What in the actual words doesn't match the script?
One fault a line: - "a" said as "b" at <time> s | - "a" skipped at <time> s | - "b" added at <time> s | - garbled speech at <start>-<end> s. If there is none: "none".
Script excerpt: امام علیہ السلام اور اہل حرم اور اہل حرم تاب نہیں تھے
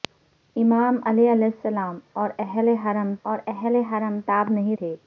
none